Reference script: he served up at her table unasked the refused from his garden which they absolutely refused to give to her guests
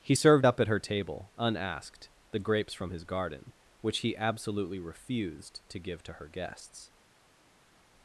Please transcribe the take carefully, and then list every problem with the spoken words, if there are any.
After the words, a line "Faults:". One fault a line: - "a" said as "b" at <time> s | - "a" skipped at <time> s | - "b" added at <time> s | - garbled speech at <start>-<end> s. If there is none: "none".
he served up at her table unasked the grapes from his garden which he absolutely refused to give to her guests
Faults:
- "refused" said as "grapes" at 2.4 s
- "they" said as "he" at 4.0 s